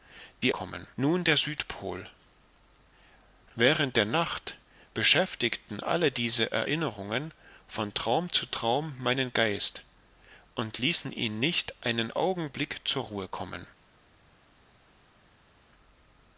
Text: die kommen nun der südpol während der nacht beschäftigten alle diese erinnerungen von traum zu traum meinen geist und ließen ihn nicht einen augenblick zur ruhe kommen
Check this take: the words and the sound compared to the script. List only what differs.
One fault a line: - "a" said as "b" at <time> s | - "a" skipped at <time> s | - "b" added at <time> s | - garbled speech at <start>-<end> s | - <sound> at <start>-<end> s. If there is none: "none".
none